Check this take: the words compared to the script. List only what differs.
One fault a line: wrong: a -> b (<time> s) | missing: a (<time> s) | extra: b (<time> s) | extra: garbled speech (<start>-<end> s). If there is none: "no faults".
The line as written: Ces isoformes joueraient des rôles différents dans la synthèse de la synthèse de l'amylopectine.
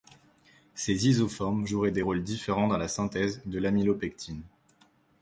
missing: la synthèse de (3.6 s)